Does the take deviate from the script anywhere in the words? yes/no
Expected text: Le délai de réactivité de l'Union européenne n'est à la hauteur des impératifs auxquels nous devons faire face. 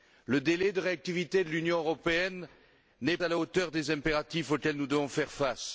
no